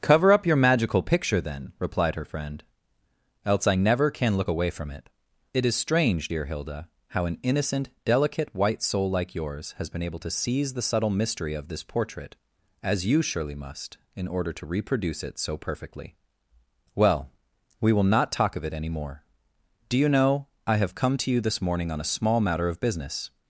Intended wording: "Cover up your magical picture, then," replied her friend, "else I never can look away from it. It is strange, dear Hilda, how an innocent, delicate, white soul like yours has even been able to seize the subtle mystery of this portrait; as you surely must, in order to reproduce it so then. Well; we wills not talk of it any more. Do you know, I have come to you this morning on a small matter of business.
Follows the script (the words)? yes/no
no